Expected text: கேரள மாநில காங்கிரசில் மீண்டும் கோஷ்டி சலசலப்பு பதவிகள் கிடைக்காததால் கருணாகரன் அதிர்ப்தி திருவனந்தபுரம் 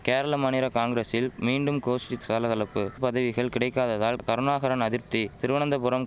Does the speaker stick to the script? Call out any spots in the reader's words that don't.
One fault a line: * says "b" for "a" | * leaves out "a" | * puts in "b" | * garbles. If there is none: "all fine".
all fine